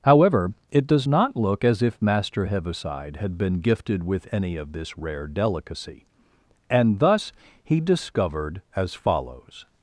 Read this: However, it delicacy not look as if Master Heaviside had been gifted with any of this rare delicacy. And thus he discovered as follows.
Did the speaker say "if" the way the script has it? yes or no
yes